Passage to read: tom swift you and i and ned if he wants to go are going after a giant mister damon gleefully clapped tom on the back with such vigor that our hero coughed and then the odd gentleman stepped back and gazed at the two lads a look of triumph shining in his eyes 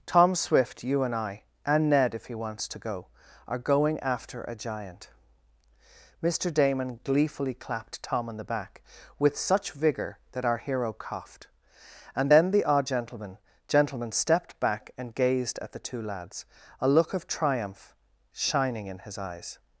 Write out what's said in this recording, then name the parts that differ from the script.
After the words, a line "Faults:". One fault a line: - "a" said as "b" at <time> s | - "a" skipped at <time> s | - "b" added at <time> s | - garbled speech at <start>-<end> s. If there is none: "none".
tom swift you and i and ned if he wants to go are going after a giant mister damon gleefully clapped tom on the back with such vigor that our hero coughed and then the odd gentleman gentleman stepped back and gazed at the two lads a look of triumph shining in his eyes
Faults:
- "gentleman" added at 13.7 s